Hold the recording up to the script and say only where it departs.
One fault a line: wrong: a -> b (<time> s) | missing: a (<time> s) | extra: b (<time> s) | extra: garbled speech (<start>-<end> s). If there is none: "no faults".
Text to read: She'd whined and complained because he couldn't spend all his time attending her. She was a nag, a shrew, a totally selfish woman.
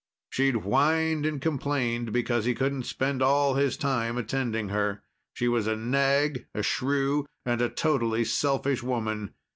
extra: and (7.4 s)